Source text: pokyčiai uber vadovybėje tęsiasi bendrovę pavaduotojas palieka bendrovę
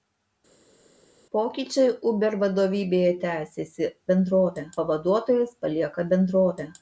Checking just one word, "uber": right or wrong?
right